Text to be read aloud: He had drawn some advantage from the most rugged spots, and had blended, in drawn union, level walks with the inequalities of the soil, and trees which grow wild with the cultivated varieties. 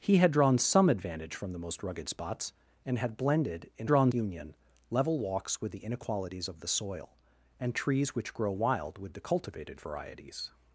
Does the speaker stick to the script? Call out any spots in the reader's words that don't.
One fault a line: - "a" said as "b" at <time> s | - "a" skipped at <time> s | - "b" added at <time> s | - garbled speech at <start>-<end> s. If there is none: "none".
none